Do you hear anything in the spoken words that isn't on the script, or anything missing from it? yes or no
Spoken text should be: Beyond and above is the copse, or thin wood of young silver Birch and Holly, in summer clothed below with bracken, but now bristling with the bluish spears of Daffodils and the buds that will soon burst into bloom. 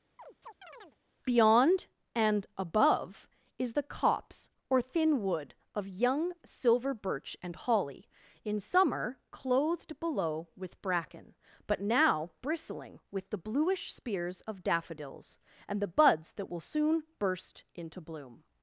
no